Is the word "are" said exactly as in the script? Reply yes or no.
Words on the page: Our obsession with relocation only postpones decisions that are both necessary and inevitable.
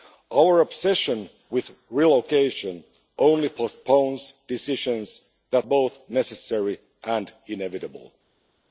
no